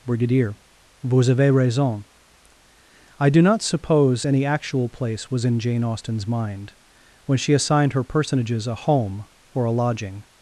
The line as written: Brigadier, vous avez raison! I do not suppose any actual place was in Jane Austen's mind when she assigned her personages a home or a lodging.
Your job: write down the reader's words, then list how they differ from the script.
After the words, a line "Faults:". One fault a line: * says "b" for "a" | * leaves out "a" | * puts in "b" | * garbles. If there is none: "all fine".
Brigadier, vous avez raison! I do not suppose any actual place was in Jane Austen's mind when she assigned her personages a home or a lodging.
Faults:
all fine